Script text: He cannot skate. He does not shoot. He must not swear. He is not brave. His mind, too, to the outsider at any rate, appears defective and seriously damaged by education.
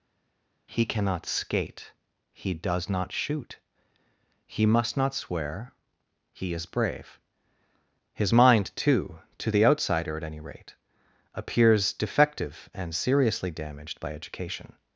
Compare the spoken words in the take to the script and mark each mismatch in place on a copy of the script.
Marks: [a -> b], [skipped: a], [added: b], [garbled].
He cannot skate. He does not shoot. He must not swear. He is [skipped: not] brave. His mind, too, to the outsider at any rate, appears defective and seriously damaged by education.